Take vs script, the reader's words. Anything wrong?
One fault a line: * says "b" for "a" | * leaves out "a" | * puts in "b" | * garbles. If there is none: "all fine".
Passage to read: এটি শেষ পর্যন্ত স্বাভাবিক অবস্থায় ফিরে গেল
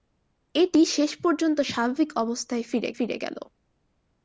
* puts in "ফিরে"